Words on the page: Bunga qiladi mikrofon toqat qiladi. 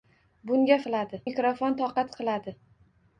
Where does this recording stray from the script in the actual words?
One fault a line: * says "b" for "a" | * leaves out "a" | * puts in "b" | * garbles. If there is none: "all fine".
all fine